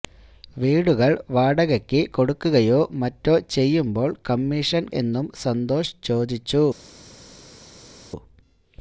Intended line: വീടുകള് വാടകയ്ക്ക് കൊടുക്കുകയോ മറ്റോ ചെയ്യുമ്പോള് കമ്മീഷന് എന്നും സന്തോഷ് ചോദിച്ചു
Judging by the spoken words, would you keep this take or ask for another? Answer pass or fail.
pass